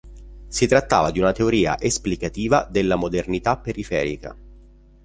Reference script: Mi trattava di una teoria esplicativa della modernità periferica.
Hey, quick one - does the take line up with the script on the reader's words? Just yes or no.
no